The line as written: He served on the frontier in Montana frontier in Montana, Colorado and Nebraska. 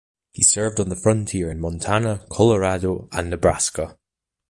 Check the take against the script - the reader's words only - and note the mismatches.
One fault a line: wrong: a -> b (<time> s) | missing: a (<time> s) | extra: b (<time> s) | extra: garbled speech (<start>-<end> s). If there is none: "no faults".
missing: frontier in Montana (2.2 s)